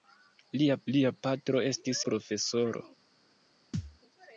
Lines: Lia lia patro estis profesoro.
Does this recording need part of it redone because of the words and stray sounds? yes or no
yes